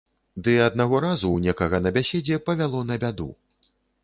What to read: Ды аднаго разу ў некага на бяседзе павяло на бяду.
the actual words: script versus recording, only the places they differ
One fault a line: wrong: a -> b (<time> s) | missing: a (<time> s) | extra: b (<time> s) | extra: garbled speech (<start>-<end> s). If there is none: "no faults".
no faults